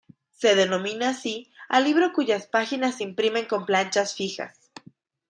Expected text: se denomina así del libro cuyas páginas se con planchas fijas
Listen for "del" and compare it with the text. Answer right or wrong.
wrong